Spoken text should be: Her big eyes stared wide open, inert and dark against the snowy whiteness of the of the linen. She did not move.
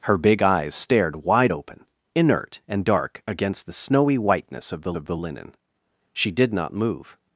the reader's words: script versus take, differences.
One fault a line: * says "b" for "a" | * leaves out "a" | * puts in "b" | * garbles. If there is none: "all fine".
all fine